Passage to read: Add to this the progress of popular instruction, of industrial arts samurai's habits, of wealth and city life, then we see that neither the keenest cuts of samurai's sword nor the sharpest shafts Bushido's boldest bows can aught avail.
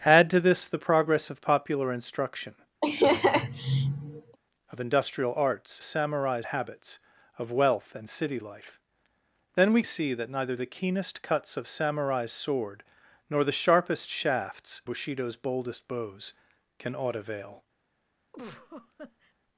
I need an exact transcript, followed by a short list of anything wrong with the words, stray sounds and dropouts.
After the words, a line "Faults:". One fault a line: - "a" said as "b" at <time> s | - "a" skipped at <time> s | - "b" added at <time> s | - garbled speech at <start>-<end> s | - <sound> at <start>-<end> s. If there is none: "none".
Add to this the progress of popular instruction, of industrial arts samurai's habits, of wealth and city life, then we see that neither the keenest cuts of samurai's sword nor the sharpest shafts Bushido's boldest bows can aught avail.
Faults:
- laugh at 2.8-4.4 s
- laugh at 18.3-19.3 s